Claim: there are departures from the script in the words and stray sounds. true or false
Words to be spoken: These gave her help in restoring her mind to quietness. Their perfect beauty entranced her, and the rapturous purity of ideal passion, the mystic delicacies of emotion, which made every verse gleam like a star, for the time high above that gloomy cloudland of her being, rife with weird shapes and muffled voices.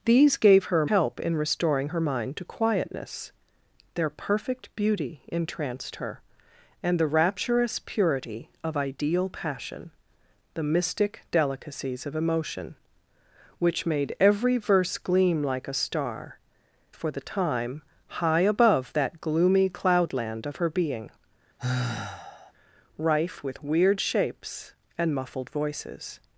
true